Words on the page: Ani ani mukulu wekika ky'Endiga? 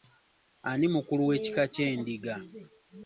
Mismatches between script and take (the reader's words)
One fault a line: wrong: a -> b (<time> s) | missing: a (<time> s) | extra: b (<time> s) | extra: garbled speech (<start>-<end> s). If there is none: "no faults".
missing: ani (0.9 s)